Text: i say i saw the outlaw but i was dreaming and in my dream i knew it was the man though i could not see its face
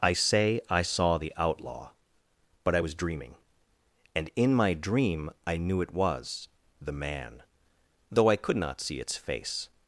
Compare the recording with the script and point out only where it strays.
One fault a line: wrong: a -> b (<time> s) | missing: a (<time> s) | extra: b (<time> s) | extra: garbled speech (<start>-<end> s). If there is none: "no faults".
no faults